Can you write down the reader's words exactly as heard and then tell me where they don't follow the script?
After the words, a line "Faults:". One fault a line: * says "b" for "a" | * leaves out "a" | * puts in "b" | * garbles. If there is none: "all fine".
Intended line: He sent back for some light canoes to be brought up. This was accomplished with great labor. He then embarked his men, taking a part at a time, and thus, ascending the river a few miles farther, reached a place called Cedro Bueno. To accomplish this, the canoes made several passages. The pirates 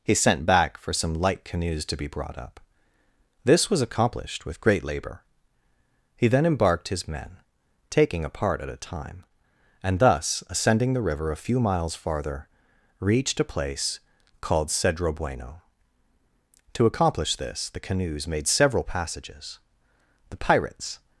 He sent back for some light canoes to be brought up. This was accomplished with great labor. He then embarked his men, taking a part at a time, and thus, ascending the river a few miles farther, reached a place called Cedro Bueno. To accomplish this, the canoes made several passages. The pirates
Faults:
all fine